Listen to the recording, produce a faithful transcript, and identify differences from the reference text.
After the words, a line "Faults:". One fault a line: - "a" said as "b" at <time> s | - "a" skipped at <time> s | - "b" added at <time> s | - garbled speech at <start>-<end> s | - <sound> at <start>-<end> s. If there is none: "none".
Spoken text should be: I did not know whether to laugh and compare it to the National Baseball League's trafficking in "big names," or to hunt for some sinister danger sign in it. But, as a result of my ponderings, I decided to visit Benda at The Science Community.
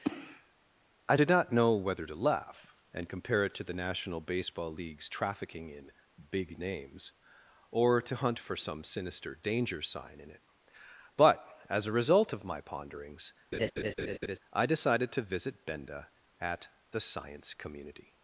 I did not know whether to laugh and compare it to the National Baseball League's trafficking in "big names," or to hunt for some sinister danger sign in it. But, as a result of my ponderings, I decided to visit Benda at The Science Community.
Faults:
- laugh at 13.5-14.4 s